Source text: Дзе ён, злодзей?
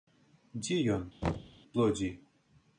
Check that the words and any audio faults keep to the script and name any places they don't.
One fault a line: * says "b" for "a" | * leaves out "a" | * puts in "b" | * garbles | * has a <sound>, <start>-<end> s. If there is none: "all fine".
* has a thud, 1.2-1.6 s